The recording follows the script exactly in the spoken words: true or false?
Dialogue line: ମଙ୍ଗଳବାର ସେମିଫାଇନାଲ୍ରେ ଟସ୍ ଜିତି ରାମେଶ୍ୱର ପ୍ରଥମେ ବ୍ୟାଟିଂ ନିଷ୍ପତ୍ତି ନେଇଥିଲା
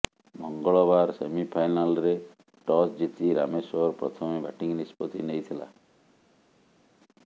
true